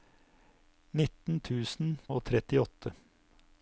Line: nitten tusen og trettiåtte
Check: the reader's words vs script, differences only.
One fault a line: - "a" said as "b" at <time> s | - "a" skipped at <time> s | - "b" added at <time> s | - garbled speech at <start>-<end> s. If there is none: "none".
none